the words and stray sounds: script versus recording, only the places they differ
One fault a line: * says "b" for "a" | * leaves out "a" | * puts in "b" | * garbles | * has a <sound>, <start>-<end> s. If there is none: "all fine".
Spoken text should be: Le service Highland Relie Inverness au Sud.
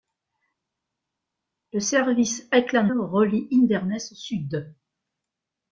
all fine